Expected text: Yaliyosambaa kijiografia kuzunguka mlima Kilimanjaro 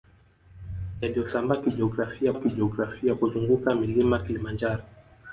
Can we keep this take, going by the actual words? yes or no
no